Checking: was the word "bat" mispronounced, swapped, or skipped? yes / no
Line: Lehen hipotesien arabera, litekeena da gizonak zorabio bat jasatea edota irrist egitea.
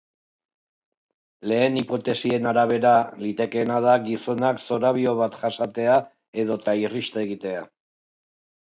no